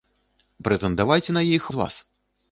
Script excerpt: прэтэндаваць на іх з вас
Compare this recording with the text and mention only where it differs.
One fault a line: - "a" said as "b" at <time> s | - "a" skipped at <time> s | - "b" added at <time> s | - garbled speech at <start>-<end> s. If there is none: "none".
none